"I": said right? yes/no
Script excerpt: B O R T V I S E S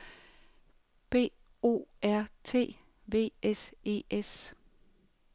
no